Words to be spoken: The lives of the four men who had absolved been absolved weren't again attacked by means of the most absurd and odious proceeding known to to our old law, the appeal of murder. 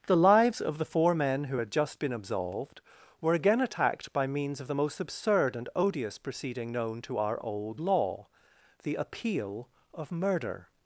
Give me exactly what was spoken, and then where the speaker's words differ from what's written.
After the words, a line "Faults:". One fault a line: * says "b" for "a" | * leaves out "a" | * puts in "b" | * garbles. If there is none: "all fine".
The lives of the four men who had just been absolved were again attacked by means of the most absurd and odious proceeding known to our old law, the appeal of murder.
Faults:
* says "just" for "absolved"
* says "were" for "weren't"
* leaves out "to"